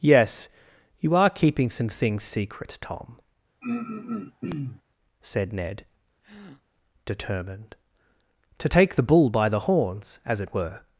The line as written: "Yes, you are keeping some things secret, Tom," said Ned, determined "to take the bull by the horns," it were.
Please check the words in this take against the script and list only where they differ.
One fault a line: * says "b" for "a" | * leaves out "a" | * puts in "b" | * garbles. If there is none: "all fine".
* puts in "as"